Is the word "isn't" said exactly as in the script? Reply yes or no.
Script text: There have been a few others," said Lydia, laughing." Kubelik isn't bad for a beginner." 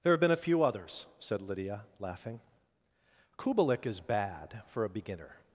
no